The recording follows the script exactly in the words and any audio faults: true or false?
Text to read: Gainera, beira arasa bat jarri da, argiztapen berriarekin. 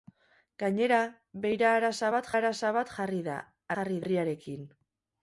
false